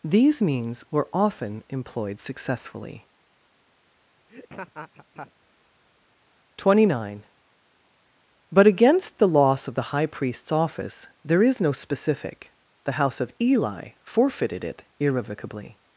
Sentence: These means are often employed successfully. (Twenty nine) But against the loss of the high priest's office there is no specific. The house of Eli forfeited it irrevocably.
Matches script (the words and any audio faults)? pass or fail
fail